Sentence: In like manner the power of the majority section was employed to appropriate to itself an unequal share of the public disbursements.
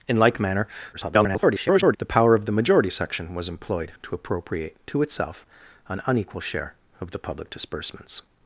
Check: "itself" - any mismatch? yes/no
no